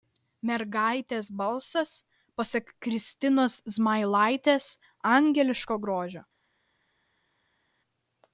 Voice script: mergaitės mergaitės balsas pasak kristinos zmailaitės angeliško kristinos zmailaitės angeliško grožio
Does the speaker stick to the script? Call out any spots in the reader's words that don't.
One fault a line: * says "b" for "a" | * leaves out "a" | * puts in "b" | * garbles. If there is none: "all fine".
* leaves out "mergaitės"
* leaves out "kristinos zmailaitės angeliško"